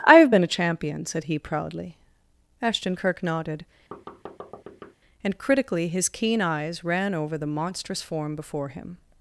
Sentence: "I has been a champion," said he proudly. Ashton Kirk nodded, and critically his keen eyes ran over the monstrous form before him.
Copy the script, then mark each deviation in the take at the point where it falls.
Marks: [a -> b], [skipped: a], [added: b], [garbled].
"I [has -> have] been a champion," said he proudly. Ashton Kirk nodded, and critically his keen eyes ran over the monstrous form before him.